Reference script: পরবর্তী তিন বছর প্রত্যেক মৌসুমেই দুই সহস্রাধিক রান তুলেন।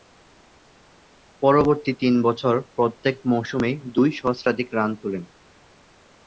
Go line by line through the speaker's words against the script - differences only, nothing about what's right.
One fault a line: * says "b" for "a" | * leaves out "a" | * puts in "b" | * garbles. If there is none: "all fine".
all fine